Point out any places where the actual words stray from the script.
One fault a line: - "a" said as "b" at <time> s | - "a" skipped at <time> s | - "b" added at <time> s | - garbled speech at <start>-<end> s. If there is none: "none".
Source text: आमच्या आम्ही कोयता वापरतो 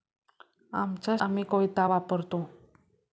none